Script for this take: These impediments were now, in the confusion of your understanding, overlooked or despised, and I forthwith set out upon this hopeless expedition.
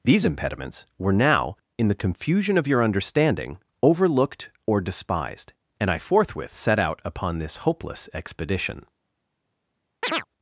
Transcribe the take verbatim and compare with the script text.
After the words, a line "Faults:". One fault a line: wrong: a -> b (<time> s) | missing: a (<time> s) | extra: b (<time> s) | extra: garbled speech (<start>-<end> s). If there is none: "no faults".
These impediments were now, in the confusion of your understanding, overlooked or despised, and I forthwith set out upon this hopeless expedition.
Faults:
no faults